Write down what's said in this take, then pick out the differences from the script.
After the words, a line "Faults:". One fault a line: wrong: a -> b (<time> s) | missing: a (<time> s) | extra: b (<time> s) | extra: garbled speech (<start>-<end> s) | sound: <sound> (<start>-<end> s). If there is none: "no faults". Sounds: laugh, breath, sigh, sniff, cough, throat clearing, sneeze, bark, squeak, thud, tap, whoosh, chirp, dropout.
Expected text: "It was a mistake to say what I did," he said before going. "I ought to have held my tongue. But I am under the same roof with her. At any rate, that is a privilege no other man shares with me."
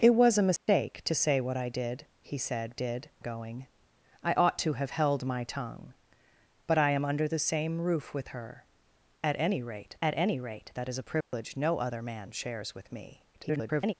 "It was a mistake to say what I did," he said did going. "I ought to have held my tongue. But I am under the same roof with her. At any rate at any rate, that is a privilege no other man shares with me." [garbled]
Faults:
sound: dropout (0.6-0.7 s)
wrong: before -> did (2.7 s)
extra: at any rate (10.0 s)
sound: dropout (11.2-11.3 s)
extra: garbled speech (13.3-13.9 s)